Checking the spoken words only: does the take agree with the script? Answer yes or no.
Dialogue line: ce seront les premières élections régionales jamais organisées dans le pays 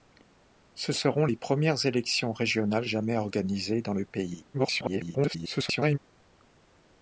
no